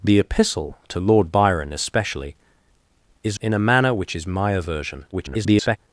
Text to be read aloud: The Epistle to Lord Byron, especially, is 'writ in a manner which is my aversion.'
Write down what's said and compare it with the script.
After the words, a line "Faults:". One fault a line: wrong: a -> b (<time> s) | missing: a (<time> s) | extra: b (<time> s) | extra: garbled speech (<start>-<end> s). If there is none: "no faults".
The Epistle to Lord Byron, especially, is 'in a manner which is my aversion.' [garbled]
Faults:
missing: writ (3.4 s)
extra: garbled speech (5.1-5.8 s)